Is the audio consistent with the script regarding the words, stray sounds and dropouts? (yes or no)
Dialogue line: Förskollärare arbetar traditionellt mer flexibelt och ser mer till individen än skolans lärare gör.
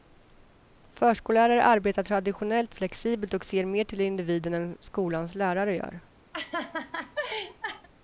no